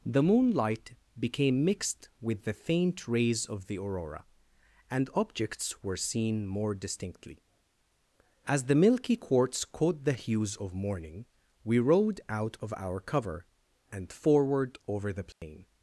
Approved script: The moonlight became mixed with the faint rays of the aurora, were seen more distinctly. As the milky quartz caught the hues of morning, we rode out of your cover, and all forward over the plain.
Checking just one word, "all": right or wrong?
wrong